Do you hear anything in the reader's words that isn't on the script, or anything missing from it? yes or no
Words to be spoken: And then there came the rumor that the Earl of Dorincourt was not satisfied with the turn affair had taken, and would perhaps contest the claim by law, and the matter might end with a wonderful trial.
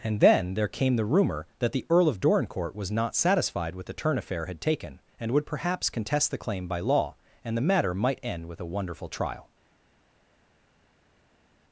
no